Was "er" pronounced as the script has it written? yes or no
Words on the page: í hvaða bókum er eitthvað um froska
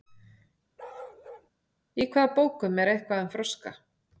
yes